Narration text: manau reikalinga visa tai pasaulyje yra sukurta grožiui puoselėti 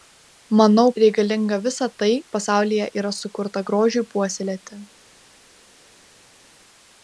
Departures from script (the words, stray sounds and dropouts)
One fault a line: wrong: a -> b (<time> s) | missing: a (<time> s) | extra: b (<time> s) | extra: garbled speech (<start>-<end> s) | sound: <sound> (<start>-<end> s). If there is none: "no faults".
no faults